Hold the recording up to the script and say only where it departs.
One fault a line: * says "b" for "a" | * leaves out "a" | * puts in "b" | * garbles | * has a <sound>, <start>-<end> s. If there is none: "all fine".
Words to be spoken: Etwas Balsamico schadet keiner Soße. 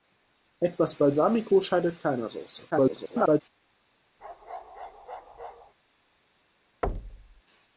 * garbles
* has a bark, 4.2-5.7 s
* has a thud, 6.8-7.4 s